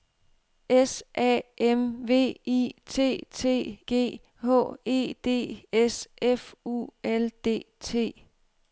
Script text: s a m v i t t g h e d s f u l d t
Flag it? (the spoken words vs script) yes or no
no